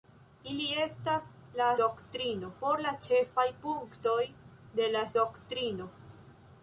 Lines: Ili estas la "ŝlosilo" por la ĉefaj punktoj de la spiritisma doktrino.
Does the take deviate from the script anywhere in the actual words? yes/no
yes